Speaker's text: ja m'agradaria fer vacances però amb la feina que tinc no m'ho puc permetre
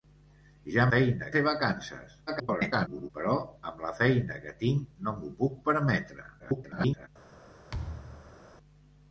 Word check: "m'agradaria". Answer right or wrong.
wrong